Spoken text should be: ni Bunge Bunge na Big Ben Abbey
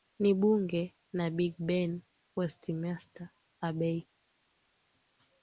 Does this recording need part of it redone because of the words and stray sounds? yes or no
yes